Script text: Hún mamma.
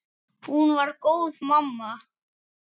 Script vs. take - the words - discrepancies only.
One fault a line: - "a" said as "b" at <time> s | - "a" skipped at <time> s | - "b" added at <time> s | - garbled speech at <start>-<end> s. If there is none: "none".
- "var góð" added at 0.8 s